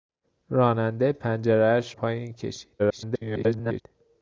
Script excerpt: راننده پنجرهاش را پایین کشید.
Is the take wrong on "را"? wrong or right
wrong